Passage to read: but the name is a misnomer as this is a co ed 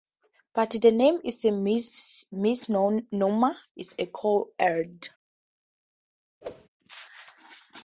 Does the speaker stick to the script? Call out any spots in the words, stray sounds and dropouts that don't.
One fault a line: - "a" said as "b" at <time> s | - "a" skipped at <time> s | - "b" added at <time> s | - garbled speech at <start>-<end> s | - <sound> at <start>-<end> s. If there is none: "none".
- "as this" skipped at 3.5 s
- whoosh at 6.4-6.7 s